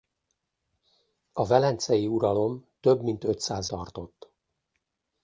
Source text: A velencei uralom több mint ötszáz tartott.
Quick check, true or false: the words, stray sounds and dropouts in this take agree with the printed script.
true